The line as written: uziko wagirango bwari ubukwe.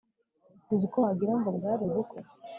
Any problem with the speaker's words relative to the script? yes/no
no